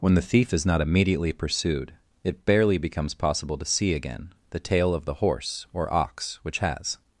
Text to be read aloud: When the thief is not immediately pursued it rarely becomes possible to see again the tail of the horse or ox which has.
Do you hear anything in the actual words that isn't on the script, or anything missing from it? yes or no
yes